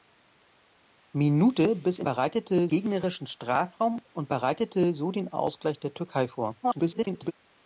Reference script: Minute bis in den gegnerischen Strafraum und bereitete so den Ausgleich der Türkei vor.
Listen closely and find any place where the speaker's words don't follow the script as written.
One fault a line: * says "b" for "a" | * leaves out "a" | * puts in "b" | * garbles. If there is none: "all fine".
* says "bereitete" for "den"
* garbles